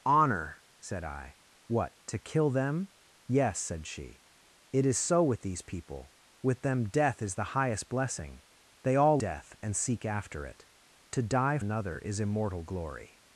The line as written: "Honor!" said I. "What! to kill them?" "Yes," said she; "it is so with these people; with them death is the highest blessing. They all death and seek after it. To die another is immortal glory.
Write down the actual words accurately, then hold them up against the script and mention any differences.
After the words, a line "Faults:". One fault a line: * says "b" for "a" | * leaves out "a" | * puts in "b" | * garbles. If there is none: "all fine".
"Honor!" said I. "What! to kill them?" "Yes," said she; "it is so with these people; with them death is the highest blessing. They all death and seek after it. To die another is immortal glory.
Faults:
all fine